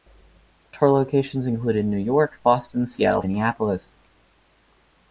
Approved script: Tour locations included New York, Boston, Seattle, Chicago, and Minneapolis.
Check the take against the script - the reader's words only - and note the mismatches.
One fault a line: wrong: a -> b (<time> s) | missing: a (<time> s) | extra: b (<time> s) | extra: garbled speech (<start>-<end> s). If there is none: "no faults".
missing: Chicago and (3.2 s)